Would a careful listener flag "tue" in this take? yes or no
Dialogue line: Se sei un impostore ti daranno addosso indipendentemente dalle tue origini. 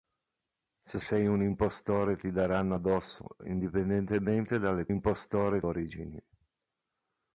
yes